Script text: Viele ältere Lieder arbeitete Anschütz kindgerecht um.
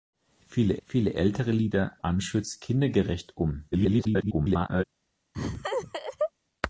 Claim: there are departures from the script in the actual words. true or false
true